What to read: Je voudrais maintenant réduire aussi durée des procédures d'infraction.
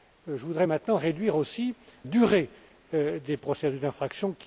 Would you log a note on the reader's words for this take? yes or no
no